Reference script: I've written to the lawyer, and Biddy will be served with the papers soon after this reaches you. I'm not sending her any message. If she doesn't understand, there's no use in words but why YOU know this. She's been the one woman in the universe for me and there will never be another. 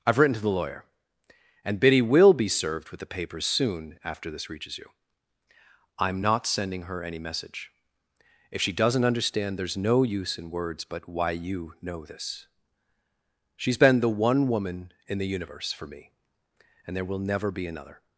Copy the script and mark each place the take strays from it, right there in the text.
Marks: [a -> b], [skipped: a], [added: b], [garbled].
I've written to the lawyer, and Biddy will be served with the papers soon after this reaches you. I'm not sending her any message. If she doesn't understand, there's no use in words but why YOU know this. She's been the one woman in the universe for me and there will never be another.